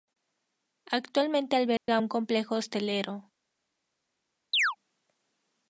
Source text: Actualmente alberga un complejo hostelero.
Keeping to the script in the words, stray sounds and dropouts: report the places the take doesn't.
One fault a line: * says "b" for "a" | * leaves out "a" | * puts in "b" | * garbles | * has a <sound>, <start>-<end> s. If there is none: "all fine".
* has a dropout, 1.8-1.9 s
* has a chirp, 4.5-4.8 s